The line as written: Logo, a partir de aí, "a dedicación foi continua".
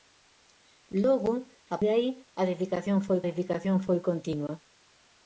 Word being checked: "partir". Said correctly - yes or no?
no